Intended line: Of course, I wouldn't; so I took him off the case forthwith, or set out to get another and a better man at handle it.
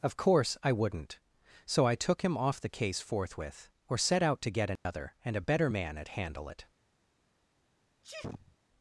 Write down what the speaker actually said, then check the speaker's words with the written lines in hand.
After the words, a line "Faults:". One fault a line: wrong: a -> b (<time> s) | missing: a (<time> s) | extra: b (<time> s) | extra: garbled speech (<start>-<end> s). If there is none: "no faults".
Of course, I wouldn't; so I took him off the case forthwith, or set out to get another and a better man at handle it.
Faults:
no faults